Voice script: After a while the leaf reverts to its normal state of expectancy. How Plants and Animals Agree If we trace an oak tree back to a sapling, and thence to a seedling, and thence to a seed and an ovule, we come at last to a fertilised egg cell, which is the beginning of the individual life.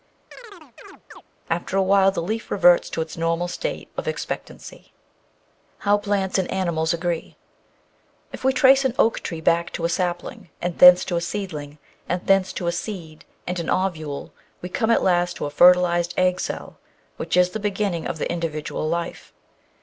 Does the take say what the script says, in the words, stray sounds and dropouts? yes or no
no